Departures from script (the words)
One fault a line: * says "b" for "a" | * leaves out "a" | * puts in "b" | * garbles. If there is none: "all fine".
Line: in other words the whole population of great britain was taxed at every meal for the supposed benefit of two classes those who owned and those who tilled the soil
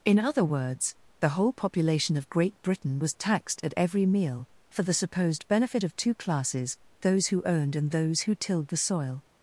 all fine